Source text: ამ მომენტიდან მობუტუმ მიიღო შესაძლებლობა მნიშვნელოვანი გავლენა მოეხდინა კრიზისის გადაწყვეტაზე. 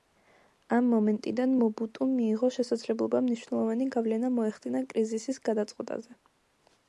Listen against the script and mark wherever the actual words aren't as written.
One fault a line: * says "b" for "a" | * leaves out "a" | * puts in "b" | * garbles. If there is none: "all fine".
all fine